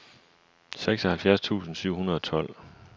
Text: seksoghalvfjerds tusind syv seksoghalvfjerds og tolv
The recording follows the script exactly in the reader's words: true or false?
false